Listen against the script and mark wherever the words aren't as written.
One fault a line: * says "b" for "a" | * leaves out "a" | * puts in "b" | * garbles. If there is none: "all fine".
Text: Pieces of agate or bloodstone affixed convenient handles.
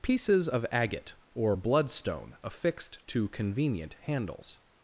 * puts in "to"